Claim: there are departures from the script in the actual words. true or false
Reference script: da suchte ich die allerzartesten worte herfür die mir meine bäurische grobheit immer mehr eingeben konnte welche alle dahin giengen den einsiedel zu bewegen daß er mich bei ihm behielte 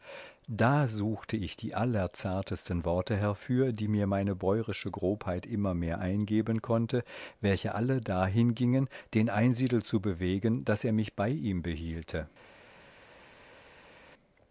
false